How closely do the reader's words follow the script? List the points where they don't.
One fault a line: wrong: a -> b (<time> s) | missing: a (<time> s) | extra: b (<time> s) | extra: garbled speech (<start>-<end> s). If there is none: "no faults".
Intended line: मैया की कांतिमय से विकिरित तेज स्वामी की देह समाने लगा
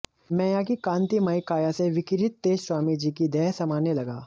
extra: काया (1.5 s)
extra: जी (3.0 s)